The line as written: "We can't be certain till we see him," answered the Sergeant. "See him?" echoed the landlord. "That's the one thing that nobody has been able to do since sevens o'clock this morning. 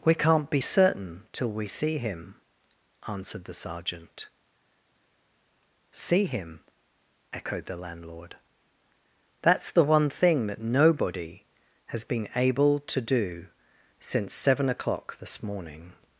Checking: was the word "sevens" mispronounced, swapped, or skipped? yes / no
yes